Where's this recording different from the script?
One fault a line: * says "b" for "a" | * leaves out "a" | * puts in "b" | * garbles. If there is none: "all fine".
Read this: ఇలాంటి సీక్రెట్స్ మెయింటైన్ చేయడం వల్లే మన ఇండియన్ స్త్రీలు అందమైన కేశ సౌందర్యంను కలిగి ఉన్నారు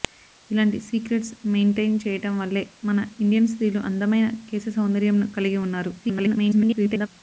* garbles